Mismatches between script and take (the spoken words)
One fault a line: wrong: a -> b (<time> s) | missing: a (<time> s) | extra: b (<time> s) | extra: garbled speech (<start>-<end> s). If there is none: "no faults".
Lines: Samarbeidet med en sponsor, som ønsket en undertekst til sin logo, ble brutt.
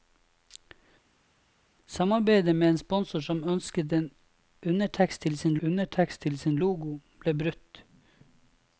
extra: undertekst til sin (5.6 s)